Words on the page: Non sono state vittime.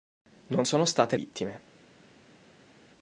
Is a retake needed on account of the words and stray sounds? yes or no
no